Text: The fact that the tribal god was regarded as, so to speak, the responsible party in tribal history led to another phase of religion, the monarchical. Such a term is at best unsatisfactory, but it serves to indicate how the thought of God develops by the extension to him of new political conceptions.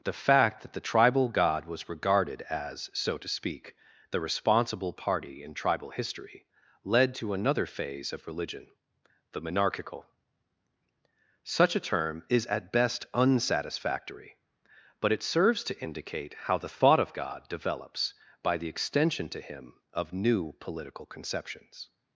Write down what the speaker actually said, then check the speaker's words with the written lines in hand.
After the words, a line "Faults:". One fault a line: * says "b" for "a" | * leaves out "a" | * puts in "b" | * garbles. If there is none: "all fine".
The fact that the tribal god was regarded as, so to speak, the responsible party in tribal history led to another phase of religion, the monarchical. Such a term is at best unsatisfactory, but it serves to indicate how the thought of God develops by the extension to him of new political conceptions.
Faults:
all fine